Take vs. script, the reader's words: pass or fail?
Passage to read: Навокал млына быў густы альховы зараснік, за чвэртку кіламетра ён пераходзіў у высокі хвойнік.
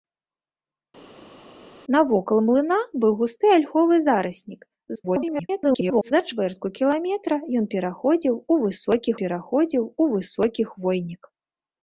fail